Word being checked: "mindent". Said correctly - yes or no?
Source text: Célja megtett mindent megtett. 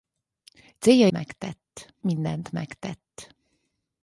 yes